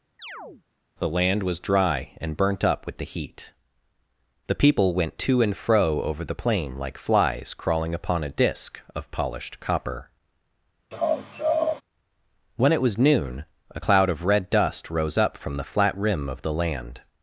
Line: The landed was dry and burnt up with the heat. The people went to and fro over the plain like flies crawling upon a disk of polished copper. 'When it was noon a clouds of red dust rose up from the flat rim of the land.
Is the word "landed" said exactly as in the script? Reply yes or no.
no